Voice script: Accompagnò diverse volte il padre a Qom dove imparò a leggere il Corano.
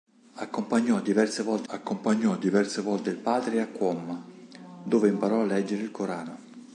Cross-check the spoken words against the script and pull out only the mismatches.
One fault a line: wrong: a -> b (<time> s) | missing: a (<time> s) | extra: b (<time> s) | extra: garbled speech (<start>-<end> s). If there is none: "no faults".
extra: accompagnò diverse volte (1.7 s)